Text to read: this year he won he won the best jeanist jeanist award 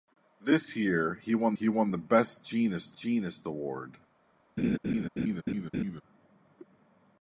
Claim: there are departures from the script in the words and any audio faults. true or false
true